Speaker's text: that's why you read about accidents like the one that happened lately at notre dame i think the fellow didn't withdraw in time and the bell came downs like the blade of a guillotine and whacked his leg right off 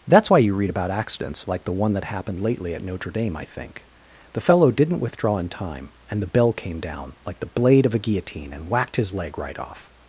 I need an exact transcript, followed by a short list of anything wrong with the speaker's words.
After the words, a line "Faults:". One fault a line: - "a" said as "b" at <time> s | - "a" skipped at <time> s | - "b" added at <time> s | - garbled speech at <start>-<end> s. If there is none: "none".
that's why you read about accidents like the one that happened lately at notre dame i think the fellow didn't withdraw in time and the bell came down like the blade of a guillotine and whacked his leg right off
Faults:
- "downs" said as "down" at 6.8 s